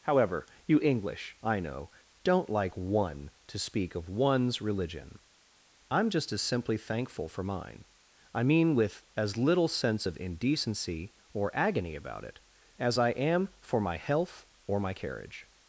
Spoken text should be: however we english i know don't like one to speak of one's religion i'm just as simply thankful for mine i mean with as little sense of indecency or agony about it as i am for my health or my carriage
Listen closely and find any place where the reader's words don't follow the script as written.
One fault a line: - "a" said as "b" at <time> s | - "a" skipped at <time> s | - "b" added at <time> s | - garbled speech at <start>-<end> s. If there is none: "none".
- "we" said as "you" at 0.7 s